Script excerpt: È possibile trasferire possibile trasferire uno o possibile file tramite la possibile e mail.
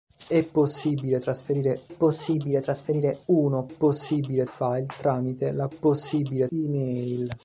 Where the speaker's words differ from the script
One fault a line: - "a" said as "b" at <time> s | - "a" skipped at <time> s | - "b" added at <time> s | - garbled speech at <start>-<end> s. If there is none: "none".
none